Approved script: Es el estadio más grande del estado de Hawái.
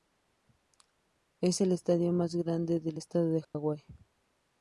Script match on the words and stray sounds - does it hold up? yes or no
no